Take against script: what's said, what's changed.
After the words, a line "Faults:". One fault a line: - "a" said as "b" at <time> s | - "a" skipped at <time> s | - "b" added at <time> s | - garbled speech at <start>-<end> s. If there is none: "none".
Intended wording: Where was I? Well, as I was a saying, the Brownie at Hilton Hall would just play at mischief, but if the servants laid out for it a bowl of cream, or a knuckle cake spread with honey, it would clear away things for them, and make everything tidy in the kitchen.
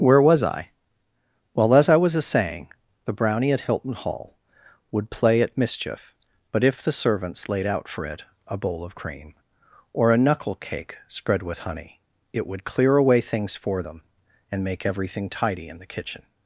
Where was I? Well, as I was a saying, the Brownie at Hilton Hall would play at mischief, but if the servants laid out for it a bowl of cream, or a knuckle cake spread with honey, it would clear away things for them, and make everything tidy in the kitchen.
Faults:
- "just" skipped at 5.1 s